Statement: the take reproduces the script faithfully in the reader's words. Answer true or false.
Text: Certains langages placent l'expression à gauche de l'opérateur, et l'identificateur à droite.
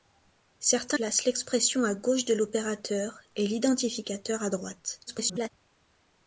false